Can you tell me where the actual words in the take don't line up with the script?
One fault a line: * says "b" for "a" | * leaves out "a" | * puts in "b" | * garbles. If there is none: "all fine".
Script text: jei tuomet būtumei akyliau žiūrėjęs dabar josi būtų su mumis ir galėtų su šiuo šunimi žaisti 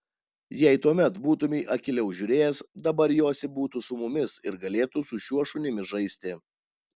all fine